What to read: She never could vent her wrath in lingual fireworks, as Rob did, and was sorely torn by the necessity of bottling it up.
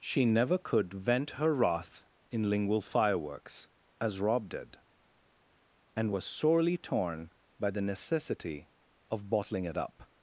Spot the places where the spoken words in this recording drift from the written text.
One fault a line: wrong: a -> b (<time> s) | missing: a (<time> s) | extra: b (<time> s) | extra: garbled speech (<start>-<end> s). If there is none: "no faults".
no faults